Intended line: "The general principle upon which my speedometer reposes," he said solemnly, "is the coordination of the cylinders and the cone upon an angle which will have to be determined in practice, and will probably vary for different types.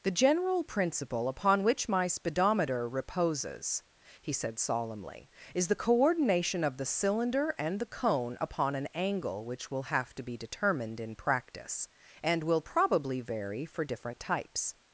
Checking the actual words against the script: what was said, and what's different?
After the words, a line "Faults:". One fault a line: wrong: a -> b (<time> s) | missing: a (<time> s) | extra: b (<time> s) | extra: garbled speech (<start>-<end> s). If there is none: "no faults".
"The general principle upon which my speedometer reposes," he said solemnly, "is the coordination of the cylinder and the cone upon an angle which will have to be determined in practice, and will probably vary for different types.
Faults:
wrong: cylinders -> cylinder (6.8 s)